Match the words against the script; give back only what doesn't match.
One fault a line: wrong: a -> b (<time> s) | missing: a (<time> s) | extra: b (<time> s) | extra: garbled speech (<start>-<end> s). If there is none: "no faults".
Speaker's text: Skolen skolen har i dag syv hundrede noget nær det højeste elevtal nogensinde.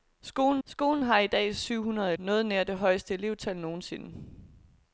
no faults